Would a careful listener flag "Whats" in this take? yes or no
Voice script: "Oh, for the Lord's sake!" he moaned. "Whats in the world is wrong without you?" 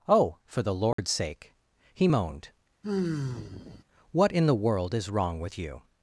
yes